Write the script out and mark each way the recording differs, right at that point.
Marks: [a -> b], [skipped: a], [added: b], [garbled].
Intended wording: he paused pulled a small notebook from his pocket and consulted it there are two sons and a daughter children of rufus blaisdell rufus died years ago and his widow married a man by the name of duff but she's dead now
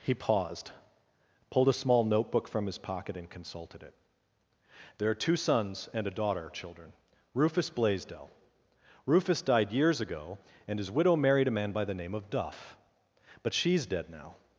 he paused pulled a small notebook from his pocket and consulted it there are two sons and a daughter children [skipped: of] rufus blaisdell rufus died years ago and his widow married a man by the name of duff but she's dead now